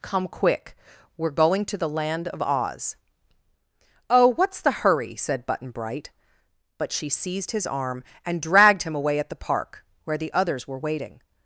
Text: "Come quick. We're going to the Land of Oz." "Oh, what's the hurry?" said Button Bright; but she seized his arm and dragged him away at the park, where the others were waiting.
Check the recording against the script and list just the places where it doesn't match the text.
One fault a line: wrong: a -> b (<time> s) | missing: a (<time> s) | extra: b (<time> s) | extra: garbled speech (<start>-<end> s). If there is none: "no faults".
no faults